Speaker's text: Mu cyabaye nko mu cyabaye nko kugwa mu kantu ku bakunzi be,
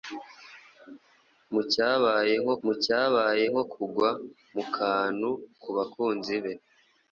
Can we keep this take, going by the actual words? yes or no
yes